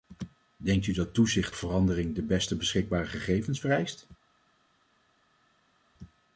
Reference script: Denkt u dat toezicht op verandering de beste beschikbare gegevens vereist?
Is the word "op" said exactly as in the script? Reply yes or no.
no